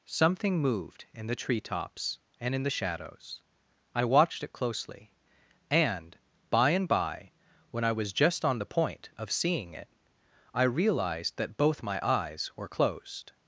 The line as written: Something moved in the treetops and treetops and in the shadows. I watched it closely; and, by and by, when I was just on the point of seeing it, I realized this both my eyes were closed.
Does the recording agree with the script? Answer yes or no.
no